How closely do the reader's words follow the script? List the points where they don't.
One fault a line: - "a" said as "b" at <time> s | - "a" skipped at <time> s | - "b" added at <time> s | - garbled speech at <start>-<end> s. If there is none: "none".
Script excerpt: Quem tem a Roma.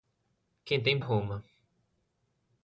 none